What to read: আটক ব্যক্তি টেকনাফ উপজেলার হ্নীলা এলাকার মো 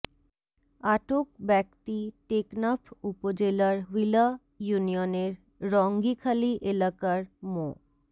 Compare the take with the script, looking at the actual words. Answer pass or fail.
fail